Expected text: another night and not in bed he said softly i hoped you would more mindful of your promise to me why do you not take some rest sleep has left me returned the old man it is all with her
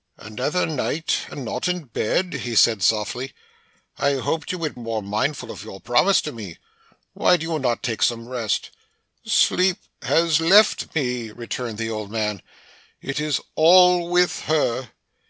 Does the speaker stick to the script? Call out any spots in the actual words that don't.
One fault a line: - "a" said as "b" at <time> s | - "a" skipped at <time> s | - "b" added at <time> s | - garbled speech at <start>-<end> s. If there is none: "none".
none